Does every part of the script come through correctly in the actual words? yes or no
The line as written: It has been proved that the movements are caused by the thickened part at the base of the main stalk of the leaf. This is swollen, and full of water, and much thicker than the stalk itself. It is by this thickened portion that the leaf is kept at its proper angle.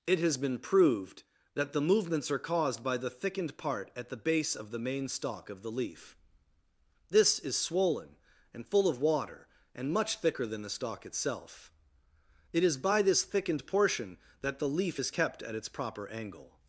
yes